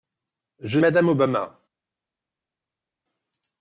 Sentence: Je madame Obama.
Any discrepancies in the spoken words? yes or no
no